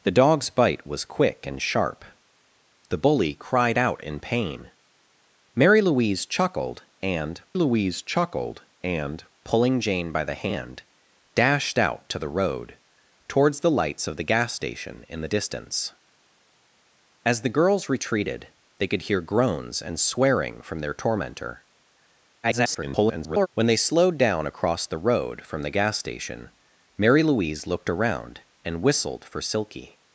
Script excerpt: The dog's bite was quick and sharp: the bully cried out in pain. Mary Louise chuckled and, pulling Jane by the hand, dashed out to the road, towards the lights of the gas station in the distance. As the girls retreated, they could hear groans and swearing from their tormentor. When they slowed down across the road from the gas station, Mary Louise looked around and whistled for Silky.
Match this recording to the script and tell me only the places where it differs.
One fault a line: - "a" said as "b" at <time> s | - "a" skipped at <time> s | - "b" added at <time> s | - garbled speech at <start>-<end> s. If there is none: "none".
- "Louise chuckled and" added at 7.5 s
- garbled speech at 22.4-23.5 s